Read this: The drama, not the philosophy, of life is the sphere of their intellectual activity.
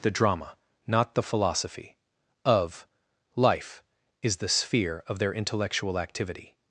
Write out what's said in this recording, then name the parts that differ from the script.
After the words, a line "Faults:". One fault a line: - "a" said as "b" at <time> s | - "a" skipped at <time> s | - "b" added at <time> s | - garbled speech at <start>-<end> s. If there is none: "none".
The drama, not the philosophy, of life is the sphere of their intellectual activity.
Faults:
none